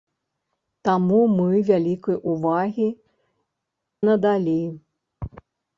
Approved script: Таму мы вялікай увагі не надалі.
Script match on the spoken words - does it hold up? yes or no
no